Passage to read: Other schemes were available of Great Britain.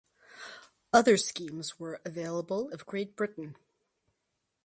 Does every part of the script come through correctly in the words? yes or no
yes